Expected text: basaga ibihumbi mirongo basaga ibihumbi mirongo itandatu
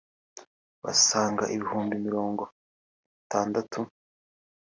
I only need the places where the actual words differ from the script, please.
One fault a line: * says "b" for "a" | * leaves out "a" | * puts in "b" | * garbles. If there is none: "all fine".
* leaves out "basaga ibihumbi mirongo"